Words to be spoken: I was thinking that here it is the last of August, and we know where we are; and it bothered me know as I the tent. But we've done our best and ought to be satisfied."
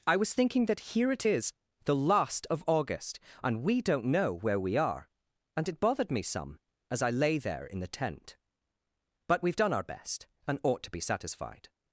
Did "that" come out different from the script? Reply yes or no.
no